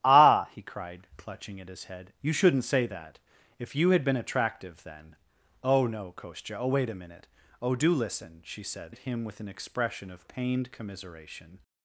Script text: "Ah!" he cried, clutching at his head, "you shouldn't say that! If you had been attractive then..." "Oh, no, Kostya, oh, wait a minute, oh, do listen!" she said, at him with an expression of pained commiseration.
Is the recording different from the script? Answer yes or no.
no